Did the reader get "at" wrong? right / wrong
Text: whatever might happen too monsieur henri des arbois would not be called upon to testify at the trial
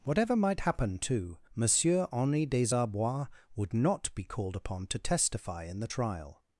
wrong